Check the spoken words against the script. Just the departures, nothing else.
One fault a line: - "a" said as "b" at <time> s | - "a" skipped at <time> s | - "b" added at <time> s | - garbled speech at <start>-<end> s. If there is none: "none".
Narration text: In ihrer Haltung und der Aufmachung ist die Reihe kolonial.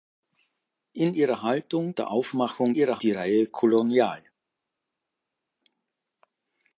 - "und" skipped at 1.9 s
- "ist" said as "ihrer" at 2.7 s